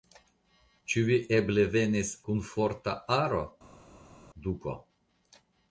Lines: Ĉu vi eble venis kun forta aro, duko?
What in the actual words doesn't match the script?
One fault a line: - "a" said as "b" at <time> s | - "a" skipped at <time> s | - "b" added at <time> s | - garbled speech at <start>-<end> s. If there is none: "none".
none